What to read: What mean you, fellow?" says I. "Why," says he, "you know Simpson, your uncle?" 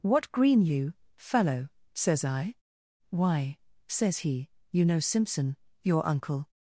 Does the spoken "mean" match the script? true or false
false